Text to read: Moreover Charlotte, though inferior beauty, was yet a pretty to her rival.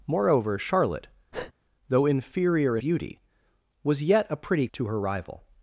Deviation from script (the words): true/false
false